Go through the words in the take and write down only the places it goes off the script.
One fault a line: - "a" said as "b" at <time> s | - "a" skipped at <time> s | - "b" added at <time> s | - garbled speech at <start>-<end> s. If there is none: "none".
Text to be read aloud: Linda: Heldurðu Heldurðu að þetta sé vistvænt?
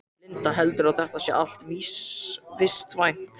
- "Heldurðu" skipped at 0.9 s
- "allt" added at 1.4 s